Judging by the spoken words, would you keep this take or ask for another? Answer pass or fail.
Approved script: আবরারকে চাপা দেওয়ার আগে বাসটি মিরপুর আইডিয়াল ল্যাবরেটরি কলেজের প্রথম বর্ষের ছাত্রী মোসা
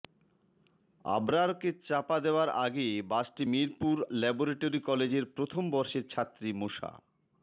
fail